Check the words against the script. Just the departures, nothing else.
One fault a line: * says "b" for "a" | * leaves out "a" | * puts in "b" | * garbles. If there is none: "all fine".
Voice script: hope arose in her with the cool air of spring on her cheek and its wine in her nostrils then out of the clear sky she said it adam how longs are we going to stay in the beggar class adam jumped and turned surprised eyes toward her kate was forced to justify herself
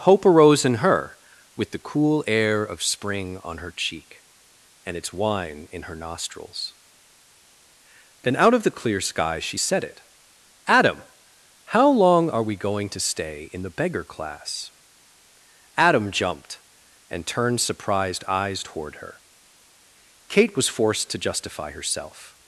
* says "long" for "longs"